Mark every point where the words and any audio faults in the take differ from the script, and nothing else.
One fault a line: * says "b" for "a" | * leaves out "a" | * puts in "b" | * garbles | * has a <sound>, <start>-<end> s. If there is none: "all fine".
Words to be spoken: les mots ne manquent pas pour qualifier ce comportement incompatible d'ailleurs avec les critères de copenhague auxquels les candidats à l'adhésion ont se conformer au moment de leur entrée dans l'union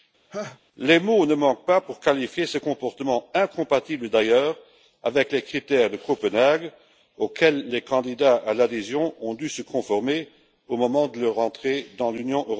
* has a laugh, 0.3-0.6 s
* puts in "dû"